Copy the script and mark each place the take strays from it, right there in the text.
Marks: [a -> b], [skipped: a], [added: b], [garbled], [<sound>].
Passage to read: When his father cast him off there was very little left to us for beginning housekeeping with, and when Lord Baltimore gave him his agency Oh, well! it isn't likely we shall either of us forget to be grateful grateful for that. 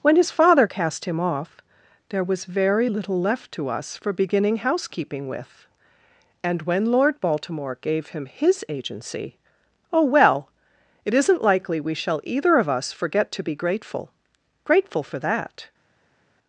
When his father cast him off there was very little left to us for beginning housekeeping with, and when Lord Baltimore gave him his agency Oh, well! it isn't likely we shall either of us forget to be grateful grateful for that.